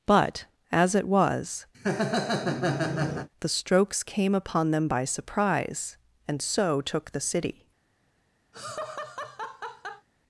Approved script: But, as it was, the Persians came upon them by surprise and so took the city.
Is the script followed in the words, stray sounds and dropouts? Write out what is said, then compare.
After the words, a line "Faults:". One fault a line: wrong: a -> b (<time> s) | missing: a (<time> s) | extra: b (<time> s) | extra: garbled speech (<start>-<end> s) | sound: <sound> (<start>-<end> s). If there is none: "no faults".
But, as it was, the Strokes came upon them by surprise and so took the city.
Faults:
sound: laugh (1.7-3.3 s)
wrong: Persians -> Strokes (3.5 s)
sound: laugh (8.5-10.1 s)